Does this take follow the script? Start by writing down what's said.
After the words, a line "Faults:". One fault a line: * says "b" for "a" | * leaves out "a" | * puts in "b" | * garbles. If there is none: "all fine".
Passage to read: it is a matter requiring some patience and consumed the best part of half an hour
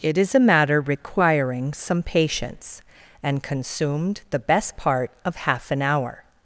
it is a matter requiring some patience and consumed the best part of half an hour
Faults:
all fine